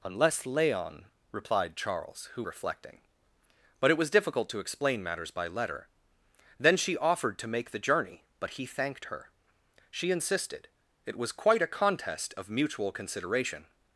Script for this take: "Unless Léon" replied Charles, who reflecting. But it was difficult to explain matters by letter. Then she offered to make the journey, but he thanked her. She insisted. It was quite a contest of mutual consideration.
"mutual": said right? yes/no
yes